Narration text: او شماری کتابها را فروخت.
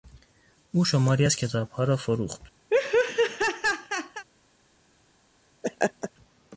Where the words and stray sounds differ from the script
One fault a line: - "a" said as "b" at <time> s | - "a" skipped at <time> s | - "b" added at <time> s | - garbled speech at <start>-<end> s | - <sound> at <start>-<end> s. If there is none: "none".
- "از" added at 1.2 s
- laugh at 2.7-4.2 s
- laugh at 5.6-6.1 s